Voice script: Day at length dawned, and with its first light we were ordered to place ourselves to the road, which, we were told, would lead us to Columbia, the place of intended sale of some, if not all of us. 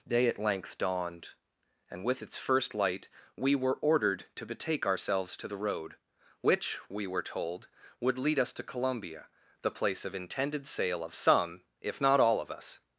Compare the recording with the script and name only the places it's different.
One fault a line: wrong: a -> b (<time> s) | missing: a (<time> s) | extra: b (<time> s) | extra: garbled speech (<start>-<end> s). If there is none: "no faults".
wrong: place -> betake (4.5 s)